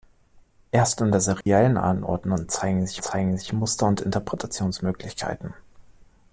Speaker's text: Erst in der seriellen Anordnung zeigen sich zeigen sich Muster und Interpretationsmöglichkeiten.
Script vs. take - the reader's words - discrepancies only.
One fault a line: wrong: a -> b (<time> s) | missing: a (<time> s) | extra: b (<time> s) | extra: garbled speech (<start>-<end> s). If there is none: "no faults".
no faults